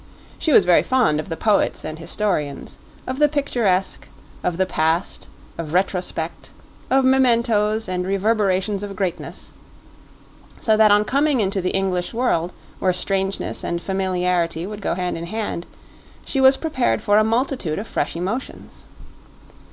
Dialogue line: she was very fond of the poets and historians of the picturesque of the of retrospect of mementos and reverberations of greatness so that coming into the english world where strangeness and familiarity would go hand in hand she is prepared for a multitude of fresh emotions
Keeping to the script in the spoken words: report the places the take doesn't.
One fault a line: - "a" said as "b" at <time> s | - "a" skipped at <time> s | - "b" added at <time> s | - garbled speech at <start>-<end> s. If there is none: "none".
- "past" added at 4.7 s
- "on" added at 10.9 s
- "is" said as "was" at 16.4 s